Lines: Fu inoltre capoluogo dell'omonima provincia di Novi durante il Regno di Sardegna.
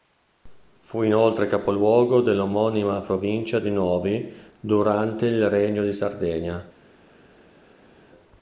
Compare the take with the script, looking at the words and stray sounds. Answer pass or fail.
pass